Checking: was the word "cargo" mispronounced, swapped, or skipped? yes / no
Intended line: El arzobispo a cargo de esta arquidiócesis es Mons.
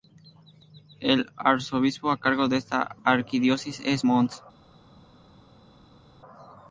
no